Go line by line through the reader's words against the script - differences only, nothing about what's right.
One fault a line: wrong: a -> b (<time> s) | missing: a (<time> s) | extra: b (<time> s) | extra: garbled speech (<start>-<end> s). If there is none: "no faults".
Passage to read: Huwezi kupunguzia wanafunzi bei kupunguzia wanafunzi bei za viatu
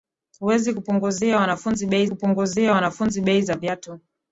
no faults